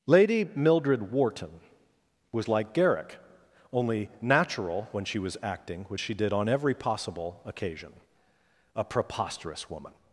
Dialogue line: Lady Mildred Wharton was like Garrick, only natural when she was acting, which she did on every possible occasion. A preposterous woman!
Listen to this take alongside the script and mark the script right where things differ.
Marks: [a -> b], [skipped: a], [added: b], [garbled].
Lady Mildred Wharton was like Garrick, only natural when she was acting, which she did on every possible occasion. A preposterous woman!